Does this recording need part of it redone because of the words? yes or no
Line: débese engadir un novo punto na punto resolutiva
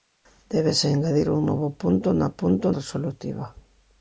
no